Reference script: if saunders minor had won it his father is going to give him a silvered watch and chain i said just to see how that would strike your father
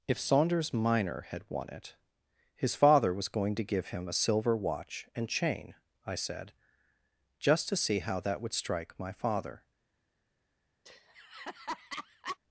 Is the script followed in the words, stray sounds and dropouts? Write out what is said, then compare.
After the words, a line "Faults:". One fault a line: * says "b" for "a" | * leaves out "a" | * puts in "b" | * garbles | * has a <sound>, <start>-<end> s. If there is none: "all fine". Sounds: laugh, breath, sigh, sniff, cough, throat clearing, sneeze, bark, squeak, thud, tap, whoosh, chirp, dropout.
if saunders minor had won it his father was going to give him a silver watch and chain i said just to see how that would strike my father
Faults:
* says "was" for "is"
* says "silver" for "silvered"
* says "my" for "your"
* has a laugh, 10.8-12.4 s